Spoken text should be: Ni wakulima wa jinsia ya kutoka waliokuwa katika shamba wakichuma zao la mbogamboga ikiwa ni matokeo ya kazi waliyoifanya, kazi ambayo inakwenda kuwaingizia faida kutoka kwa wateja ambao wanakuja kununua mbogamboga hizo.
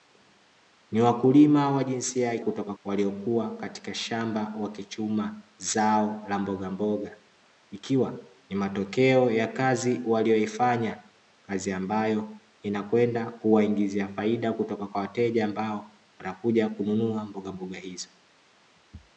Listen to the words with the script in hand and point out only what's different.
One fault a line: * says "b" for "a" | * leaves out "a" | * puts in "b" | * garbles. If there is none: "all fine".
all fine